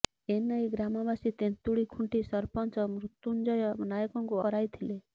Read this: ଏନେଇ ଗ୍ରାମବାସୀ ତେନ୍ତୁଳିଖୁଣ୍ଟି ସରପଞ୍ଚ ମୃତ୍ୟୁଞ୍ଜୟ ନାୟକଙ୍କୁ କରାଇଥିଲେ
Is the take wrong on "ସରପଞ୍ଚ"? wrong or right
right